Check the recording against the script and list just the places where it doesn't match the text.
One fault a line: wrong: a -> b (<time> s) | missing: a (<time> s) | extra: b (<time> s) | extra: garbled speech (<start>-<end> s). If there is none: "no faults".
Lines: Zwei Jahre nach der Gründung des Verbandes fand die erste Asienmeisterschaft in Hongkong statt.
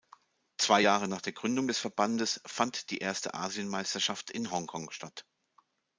no faults